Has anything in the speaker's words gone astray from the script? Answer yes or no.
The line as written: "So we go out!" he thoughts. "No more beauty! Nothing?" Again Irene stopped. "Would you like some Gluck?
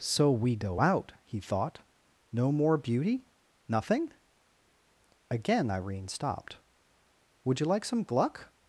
yes